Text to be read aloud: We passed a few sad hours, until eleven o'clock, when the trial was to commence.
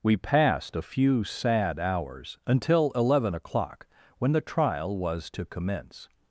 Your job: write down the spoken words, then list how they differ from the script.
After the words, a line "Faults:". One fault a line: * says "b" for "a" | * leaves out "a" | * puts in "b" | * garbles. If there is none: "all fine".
We passed a few sad hours, until eleven o'clock, when the trial was to commence.
Faults:
all fine